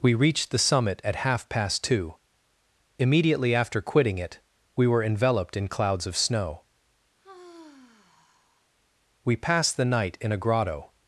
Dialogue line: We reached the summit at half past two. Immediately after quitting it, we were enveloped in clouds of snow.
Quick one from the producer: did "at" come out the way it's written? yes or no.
yes